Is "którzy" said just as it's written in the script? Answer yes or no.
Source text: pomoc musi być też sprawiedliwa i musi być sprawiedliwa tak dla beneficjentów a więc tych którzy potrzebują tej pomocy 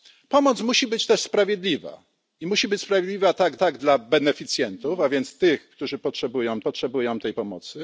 yes